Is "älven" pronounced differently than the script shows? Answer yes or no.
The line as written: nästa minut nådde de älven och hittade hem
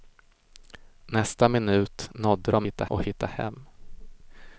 yes